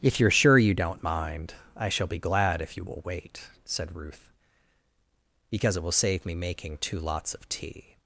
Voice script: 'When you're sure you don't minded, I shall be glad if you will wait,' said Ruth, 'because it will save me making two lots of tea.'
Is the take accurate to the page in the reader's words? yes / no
no